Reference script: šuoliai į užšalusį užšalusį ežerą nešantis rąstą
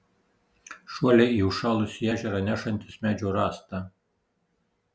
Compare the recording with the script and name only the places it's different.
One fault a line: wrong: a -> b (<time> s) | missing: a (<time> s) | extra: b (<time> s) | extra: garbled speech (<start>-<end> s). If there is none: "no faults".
missing: užšalusį (2.1 s)
extra: medžio (3.1 s)